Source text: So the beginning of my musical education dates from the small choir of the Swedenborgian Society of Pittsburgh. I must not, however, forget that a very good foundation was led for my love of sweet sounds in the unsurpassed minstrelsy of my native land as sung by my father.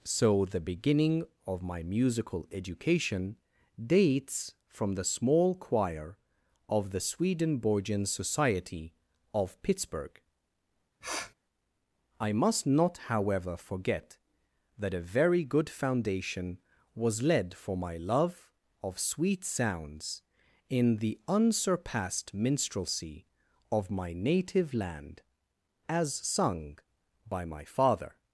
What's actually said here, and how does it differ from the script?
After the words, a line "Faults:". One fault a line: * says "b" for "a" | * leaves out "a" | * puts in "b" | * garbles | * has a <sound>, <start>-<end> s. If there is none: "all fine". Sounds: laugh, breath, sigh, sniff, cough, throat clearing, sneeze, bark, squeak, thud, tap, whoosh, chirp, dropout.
So the beginning of my musical education dates from the small choir of the Swedenborgian Society of Pittsburgh. I must not, however, forget that a very good foundation was led for my love of sweet sounds in the unsurpassed minstrelsy of my native land as sung by my father.
Faults:
* has a sniff, 11.0-11.3 s